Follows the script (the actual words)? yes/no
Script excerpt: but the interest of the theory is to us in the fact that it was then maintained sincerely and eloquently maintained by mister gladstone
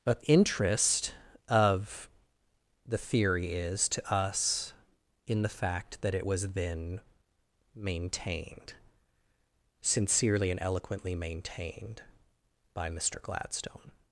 no